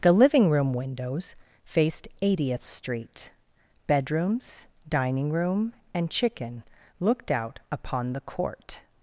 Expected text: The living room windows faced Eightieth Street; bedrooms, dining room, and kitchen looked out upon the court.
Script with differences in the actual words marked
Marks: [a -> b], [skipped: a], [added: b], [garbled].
The living room windows faced Eightieth Street; bedrooms, dining room, and [kitchen -> chicken] looked out upon the court.